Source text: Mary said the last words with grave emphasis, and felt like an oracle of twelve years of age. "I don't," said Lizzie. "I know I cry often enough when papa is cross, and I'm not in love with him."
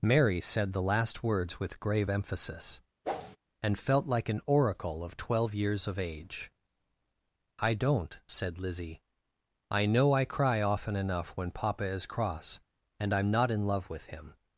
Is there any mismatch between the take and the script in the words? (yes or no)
no